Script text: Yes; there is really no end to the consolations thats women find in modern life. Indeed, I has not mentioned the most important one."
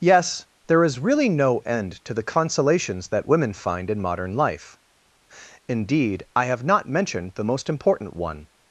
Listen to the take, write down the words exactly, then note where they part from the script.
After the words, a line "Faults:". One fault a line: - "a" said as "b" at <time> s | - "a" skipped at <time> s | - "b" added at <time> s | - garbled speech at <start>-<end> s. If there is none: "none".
Yes; there is really no end to the consolations that women find in modern life. Indeed, I have not mentioned the most important one."
Faults:
- "thats" said as "that" at 3.1 s
- "has" said as "have" at 6.5 s